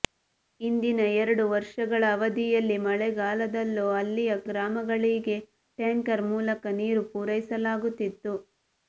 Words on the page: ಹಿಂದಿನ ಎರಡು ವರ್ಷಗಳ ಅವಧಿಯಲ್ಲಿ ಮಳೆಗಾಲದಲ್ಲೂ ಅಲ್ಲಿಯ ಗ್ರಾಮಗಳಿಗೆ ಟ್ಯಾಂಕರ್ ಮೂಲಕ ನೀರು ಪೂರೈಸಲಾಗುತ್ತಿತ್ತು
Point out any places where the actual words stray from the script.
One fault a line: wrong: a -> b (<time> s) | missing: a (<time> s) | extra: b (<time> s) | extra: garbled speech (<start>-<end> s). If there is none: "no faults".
no faults